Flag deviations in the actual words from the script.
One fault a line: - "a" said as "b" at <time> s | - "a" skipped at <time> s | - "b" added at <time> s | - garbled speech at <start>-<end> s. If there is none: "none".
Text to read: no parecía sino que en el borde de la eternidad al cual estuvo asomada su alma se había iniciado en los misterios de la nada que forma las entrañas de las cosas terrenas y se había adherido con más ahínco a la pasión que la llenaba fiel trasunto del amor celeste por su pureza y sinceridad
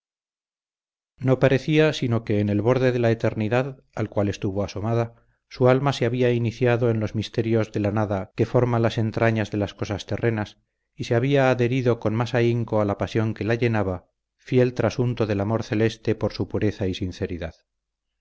none